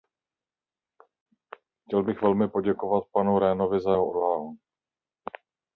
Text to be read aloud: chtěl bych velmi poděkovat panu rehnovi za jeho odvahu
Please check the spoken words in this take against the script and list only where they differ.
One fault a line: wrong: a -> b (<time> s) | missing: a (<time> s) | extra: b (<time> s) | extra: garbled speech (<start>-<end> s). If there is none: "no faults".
no faults